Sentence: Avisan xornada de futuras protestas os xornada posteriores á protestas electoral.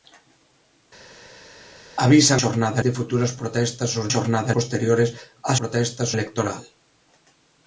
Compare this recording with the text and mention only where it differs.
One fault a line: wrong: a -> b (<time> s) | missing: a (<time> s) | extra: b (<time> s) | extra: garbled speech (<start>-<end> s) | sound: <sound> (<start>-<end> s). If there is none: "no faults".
no faults